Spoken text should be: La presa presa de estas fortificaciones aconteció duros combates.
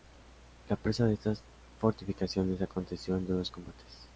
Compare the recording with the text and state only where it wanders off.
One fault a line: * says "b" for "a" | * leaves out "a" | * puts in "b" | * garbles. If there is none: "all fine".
* leaves out "presa"
* puts in "en"